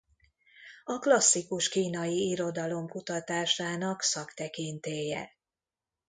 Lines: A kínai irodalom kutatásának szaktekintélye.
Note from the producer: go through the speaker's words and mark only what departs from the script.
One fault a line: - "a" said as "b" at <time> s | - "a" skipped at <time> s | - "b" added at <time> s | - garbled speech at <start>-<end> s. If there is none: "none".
- "klasszikus" added at 1.0 s